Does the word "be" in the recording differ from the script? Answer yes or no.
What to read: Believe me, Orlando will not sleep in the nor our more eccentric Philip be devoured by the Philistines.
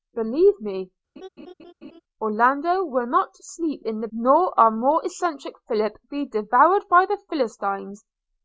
no